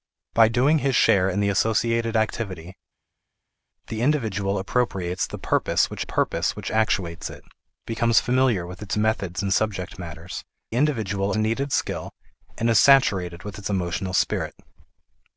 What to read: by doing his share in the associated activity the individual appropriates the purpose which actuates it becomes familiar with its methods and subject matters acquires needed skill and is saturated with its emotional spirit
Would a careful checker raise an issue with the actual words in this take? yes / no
yes